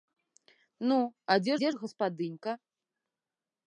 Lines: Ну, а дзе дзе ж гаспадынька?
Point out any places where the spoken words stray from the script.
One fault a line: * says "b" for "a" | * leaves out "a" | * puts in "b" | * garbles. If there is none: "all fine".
all fine